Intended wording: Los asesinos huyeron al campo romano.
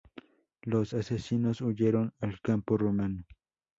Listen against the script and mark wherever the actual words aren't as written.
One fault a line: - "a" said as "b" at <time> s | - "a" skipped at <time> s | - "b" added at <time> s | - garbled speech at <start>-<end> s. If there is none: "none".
none